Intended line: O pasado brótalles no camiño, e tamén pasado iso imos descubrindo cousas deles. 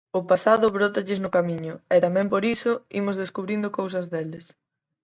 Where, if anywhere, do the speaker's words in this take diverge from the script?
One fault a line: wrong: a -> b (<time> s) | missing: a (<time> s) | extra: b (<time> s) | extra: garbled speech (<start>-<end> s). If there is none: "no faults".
wrong: pasado -> por (2.3 s)